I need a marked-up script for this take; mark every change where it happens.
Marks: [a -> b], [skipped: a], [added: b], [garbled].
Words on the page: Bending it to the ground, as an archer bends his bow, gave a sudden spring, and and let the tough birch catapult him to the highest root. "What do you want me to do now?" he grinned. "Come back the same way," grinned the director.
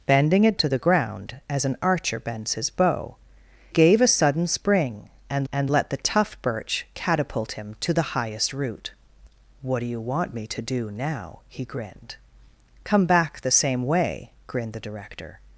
Bending it to the ground, as an archer bends his bow, gave a sudden spring, and and let the tough birch catapult him to the highest root. "What do you want me to do now?" he grinned. "Come back the same way," grinned the director.